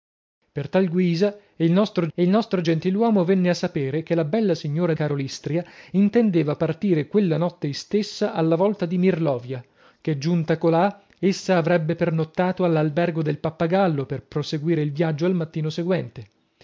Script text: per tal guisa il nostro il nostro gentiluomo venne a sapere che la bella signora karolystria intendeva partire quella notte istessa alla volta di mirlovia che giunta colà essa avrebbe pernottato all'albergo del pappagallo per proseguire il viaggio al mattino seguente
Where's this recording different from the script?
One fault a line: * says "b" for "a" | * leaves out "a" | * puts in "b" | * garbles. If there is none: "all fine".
all fine